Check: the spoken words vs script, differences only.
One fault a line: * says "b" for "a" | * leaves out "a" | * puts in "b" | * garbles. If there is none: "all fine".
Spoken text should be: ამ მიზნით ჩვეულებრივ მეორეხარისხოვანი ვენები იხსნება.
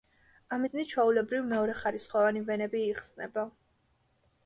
all fine